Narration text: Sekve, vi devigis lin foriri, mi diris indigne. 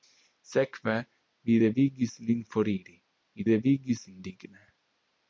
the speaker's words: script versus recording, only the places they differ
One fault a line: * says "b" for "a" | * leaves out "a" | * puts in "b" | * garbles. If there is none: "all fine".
* says "devigis" for "diris"